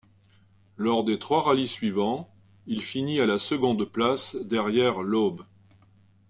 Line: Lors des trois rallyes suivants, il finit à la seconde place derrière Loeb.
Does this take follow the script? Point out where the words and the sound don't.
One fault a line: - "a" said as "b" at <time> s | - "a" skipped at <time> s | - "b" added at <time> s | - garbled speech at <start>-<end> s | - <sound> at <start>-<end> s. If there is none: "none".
none